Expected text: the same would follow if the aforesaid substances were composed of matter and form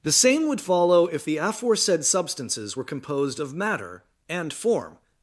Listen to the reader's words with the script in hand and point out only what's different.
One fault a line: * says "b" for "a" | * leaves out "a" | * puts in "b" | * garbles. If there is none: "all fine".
all fine